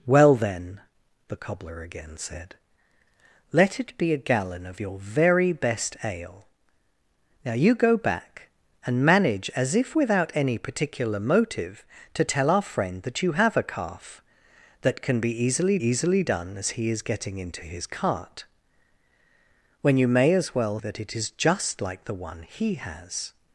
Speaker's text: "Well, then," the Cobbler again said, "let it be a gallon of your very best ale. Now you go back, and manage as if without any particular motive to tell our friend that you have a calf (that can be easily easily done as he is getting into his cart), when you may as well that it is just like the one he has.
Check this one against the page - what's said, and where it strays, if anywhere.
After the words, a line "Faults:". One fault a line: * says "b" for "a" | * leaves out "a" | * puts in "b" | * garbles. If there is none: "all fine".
"Well, then," the Cobbler again said, "let it be a gallon of your very best ale. Now you go back, and manage as if without any particular motive to tell our friend that you have a calf (that can be easily easily done as he is getting into his cart), when you may as well that it is just like the one he has.
Faults:
all fine